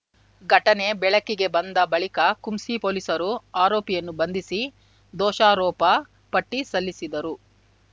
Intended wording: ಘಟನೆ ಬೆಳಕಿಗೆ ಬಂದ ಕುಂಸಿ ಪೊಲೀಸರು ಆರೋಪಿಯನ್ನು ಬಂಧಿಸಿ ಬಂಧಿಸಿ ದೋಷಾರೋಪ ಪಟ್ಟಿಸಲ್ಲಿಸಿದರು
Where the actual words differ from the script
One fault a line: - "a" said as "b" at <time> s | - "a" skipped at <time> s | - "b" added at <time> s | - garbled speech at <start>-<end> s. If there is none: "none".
- "ಬಳಿಕ" added at 1.9 s
- "ಬಂಧಿಸಿ" skipped at 4.6 s